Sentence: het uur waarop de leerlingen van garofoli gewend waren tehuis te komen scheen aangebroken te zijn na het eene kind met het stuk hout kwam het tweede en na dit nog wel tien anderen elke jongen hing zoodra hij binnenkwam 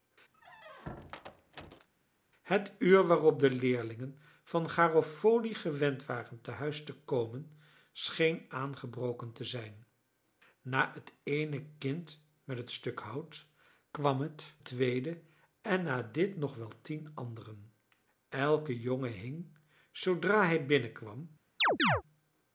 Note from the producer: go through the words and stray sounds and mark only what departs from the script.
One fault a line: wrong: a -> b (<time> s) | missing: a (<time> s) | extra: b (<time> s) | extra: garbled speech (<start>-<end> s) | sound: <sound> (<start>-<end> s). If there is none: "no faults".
sound: squeak (0.3-1.9 s)
sound: chirp (21.6-22.0 s)